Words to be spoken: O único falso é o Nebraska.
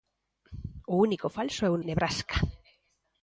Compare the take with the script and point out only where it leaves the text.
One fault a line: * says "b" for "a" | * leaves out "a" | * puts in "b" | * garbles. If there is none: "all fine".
all fine